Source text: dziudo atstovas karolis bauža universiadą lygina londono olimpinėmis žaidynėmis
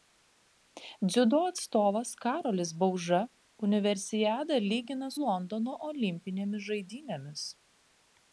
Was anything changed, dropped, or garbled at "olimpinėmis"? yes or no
no